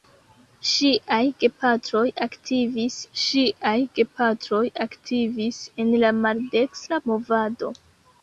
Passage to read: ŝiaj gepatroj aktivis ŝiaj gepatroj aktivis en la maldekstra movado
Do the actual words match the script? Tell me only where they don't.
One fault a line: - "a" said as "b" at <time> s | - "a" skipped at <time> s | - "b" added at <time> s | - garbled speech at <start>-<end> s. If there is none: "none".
none